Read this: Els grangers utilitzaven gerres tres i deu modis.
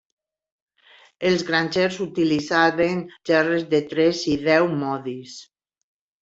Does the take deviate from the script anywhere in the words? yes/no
yes